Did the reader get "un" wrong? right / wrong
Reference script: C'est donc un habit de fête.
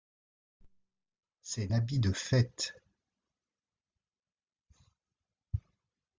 wrong